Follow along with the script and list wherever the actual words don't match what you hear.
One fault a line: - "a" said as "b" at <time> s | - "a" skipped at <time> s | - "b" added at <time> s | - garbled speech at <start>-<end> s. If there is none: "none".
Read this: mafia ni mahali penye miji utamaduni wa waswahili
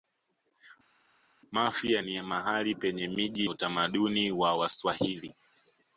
none